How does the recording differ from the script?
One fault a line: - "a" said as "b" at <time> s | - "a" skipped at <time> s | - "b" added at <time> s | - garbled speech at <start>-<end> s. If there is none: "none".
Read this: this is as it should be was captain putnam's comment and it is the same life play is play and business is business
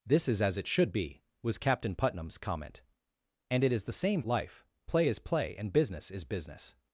none